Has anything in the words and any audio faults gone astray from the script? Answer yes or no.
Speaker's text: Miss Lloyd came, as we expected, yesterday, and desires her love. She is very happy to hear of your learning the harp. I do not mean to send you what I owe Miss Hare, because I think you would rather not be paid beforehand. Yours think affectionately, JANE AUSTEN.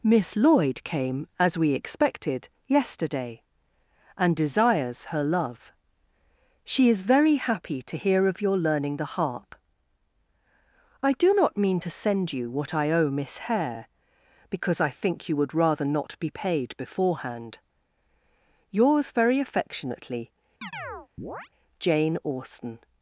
yes